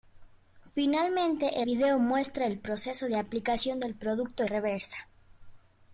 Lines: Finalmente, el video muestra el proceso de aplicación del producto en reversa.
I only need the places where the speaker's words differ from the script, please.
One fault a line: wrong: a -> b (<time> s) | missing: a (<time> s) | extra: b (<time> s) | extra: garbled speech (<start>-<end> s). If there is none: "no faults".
missing: el (1.6 s)
missing: en (4.4 s)